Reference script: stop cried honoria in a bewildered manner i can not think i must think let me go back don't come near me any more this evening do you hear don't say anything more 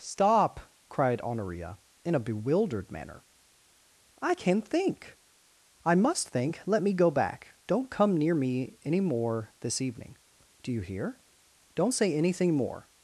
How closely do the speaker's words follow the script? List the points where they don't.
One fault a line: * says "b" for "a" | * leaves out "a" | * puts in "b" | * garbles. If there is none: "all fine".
* leaves out "not"